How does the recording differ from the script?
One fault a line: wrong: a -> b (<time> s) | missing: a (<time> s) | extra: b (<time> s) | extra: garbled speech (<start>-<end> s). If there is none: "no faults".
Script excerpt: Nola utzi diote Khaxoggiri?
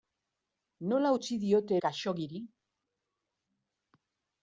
no faults